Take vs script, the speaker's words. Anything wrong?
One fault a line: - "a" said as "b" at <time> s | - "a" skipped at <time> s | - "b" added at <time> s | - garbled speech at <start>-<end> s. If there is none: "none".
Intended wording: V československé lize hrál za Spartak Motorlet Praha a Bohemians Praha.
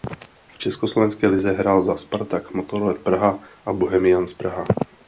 none